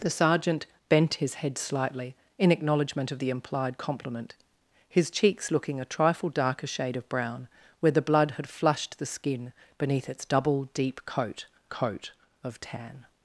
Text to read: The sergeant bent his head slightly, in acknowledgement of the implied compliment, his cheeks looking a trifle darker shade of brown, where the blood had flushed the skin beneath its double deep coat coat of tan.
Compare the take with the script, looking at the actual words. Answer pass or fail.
pass